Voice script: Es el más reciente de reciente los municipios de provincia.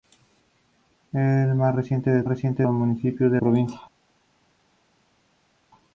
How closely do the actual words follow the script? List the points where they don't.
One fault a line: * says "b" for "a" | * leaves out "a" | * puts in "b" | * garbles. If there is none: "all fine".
all fine